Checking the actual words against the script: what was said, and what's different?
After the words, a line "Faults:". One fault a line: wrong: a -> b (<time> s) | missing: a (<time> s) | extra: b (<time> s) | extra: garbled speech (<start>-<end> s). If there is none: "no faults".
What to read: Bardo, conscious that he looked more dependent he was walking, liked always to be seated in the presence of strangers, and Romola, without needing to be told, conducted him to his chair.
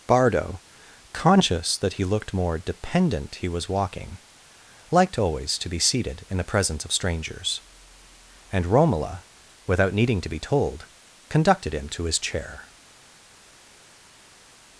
Bardo, conscious that he looked more dependent he was walking, liked always to be seated in the presence of strangers, and Romola, without needing to be told, conducted him to his chair.
Faults:
no faults